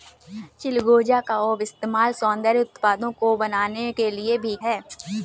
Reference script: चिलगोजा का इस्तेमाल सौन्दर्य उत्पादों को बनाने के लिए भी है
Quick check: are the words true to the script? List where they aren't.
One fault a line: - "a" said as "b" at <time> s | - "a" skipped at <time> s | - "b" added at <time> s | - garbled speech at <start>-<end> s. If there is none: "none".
none